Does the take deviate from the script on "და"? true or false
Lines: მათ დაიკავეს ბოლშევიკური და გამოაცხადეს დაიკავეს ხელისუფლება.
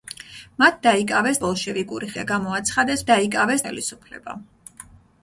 false